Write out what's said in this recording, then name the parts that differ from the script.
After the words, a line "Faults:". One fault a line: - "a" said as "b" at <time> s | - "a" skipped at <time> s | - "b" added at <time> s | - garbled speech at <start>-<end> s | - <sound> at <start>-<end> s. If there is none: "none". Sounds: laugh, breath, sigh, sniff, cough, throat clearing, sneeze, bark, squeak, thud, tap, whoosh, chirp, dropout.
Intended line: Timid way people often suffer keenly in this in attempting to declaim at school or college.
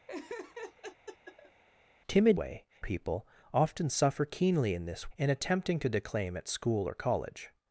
Timid way people often suffer keenly in this in attempting to declaim at school or college.
Faults:
- laugh at 0.1-1.6 s